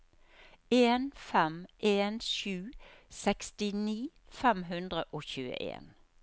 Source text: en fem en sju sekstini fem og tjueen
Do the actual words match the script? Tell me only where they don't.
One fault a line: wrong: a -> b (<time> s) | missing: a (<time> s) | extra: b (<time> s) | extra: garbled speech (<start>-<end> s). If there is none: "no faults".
extra: hundre (4.7 s)